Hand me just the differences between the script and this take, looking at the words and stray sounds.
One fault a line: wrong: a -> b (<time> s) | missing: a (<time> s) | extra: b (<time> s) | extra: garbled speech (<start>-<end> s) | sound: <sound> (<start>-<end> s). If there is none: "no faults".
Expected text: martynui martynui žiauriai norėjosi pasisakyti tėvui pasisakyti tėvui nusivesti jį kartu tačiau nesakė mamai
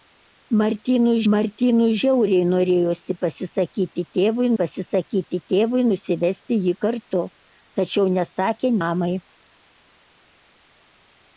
no faults